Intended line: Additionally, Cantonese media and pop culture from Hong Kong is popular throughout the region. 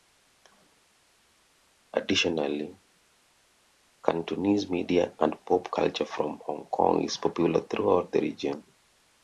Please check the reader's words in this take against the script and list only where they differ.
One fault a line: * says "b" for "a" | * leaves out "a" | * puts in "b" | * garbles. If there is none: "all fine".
all fine